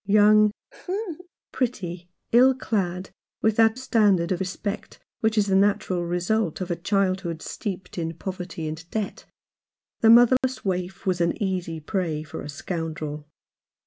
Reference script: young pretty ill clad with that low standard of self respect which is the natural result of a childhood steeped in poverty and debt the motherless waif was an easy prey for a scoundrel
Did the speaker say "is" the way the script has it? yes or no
yes